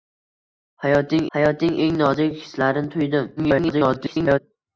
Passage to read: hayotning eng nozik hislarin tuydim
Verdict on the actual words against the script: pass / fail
fail